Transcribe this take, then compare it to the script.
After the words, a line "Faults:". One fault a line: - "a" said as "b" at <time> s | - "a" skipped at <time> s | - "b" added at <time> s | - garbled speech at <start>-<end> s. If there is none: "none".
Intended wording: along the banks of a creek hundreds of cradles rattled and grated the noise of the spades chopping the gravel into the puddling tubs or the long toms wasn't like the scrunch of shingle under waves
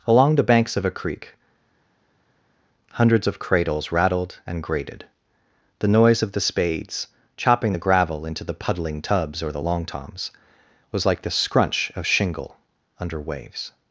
along the banks of a creek hundreds of cradles rattled and grated the noise of the spades chopping the gravel into the puddling tubs or the long toms was like the scrunch of shingle under waves
Faults:
- "wasn't" said as "was" at 10.9 s